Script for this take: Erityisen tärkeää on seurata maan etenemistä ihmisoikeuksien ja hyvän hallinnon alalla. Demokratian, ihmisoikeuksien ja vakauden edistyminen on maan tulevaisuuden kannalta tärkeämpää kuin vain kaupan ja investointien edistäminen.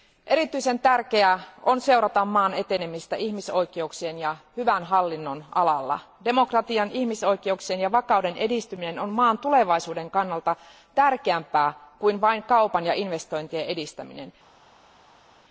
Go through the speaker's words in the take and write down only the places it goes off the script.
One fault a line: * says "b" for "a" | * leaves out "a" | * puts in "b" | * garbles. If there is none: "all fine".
all fine